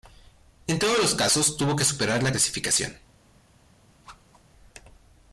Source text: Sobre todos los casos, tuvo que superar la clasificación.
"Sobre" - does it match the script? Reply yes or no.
no